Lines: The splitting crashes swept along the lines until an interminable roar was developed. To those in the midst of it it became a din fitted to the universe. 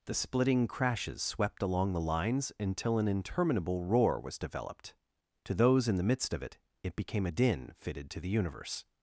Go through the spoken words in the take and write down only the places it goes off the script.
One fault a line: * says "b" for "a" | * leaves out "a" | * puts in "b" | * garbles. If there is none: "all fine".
all fine